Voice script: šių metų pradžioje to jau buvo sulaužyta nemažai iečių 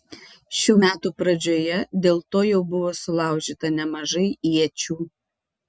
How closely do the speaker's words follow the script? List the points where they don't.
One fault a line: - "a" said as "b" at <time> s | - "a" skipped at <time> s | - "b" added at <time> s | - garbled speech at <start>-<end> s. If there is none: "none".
- "dėl" added at 2.1 s